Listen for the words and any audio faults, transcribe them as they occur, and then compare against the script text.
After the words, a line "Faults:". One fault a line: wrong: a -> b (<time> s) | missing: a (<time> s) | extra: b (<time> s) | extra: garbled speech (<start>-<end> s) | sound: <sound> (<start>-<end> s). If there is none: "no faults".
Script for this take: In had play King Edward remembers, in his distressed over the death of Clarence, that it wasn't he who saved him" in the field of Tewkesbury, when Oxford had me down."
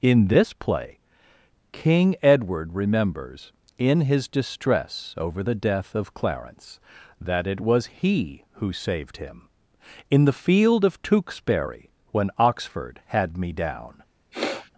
In this play King Edward remembers, in his distress over the death of Clarence, that it was he who saved him" in the field of Tewkesbury, when Oxford had me down."
Faults:
wrong: had -> this (0.3 s)
wrong: distressed -> distress (4.3 s)
wrong: wasn't -> was (7.6 s)
sound: sniff (14.3-14.7 s)